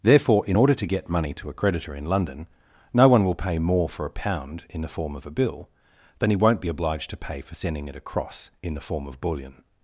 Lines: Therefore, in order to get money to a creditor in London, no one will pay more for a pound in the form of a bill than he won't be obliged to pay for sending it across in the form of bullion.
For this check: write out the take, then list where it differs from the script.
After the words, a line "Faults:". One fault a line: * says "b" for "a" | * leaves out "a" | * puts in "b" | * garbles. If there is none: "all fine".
Therefore, in order to get money to a creditor in London, no one will pay more for a pound in the form of a bill than he won't be obliged to pay for sending it across in the form of bullion.
Faults:
all fine